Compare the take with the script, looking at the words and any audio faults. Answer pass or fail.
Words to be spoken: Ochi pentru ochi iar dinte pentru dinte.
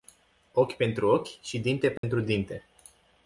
fail